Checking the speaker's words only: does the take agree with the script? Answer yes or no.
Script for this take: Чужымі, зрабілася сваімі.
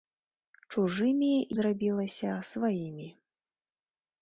yes